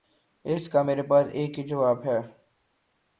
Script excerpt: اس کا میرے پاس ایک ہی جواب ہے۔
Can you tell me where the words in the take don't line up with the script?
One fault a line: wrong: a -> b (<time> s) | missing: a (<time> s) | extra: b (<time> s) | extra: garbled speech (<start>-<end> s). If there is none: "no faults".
no faults